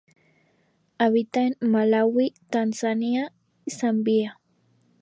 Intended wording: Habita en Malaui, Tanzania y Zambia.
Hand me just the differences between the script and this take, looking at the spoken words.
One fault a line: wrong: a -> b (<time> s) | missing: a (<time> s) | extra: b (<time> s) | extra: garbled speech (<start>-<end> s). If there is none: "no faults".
missing: y (3.3 s)